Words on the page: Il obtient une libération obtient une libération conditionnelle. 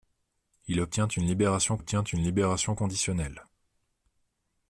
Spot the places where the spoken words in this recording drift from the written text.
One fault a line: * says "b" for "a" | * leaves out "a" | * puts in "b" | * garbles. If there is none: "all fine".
all fine